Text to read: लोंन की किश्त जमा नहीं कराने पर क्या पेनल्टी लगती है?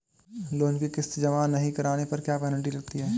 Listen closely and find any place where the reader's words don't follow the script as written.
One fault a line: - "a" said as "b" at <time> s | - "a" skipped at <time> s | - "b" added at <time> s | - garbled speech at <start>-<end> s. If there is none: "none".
none